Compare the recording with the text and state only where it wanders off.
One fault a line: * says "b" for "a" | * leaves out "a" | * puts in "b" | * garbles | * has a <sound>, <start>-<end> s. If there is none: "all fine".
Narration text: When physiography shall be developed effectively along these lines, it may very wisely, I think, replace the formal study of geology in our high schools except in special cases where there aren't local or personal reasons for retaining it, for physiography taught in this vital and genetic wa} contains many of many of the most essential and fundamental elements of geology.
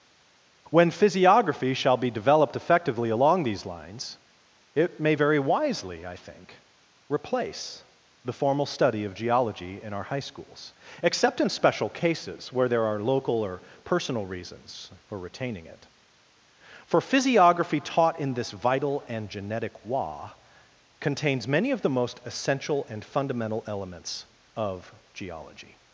* says "are" for "aren't"
* leaves out "many of"